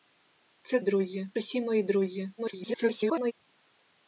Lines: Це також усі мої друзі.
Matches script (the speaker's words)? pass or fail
fail